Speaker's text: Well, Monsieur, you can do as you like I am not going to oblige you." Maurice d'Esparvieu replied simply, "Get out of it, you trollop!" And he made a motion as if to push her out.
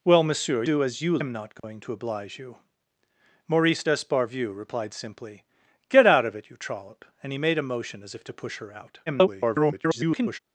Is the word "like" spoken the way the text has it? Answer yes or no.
no